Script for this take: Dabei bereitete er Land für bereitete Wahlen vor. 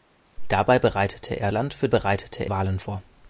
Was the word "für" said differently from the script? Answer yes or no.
no